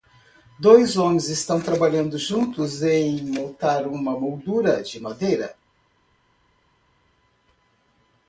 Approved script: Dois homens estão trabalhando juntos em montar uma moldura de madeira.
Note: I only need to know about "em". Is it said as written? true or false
true